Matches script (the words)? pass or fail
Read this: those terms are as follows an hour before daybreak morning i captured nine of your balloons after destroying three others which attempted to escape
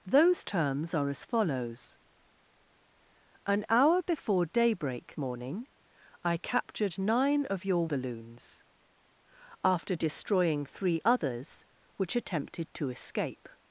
pass